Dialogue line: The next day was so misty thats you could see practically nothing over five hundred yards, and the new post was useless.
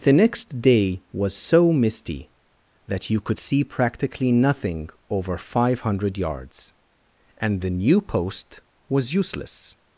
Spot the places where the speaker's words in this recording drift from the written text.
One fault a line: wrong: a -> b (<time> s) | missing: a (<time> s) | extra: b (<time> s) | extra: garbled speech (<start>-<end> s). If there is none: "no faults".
wrong: thats -> that (2.9 s)